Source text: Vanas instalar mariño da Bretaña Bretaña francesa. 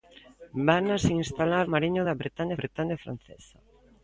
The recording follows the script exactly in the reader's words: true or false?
true